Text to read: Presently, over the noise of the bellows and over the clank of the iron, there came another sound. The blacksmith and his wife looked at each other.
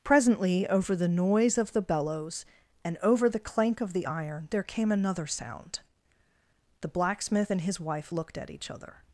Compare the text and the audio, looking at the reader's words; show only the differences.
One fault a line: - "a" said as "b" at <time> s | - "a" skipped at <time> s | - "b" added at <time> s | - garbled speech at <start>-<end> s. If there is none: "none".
none